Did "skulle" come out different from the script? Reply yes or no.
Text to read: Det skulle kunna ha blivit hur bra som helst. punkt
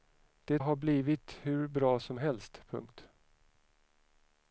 yes